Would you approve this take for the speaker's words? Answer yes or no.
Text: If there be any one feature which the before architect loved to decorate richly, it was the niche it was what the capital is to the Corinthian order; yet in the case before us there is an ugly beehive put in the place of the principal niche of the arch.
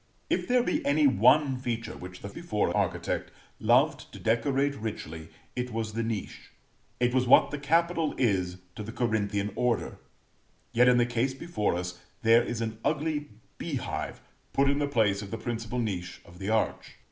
yes